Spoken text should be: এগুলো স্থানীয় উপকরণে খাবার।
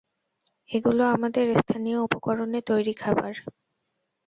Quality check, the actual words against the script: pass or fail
fail